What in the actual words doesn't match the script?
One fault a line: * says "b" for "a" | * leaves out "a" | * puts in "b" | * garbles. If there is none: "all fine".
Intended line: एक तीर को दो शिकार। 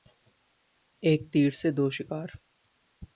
* says "से" for "को"